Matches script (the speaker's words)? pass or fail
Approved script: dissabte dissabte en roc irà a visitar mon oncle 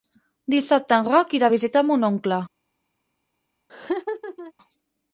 fail